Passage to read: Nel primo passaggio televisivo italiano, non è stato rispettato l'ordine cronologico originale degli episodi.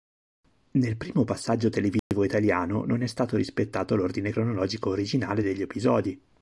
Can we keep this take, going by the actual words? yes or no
yes